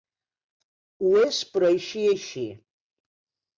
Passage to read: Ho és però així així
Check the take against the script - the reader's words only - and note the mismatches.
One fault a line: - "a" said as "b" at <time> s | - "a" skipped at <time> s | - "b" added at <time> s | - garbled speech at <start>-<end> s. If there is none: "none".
none